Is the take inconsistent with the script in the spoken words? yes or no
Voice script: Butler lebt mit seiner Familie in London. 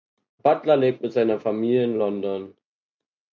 no